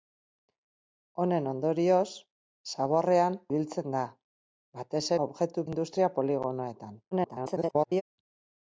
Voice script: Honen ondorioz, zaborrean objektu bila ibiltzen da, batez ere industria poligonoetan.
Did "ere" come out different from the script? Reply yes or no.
yes